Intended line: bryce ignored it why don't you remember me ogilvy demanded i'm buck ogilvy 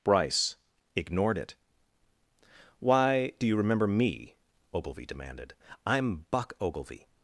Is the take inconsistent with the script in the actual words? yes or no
yes